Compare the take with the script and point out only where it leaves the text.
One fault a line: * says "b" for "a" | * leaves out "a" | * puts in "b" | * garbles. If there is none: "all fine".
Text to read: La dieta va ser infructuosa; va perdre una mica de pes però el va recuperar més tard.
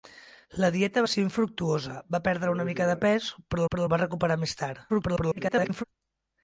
* puts in "però"
* garbles